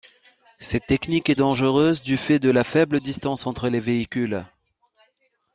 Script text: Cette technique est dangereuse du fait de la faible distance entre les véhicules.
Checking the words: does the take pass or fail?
pass